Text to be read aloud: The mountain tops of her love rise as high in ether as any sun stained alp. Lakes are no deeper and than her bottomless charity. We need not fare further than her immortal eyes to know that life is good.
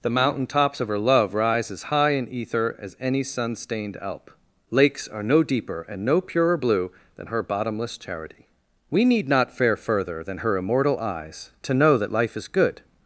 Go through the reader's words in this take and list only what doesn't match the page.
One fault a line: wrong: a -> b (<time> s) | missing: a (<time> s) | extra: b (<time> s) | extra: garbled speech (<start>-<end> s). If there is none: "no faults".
extra: no purer blue (6.0 s)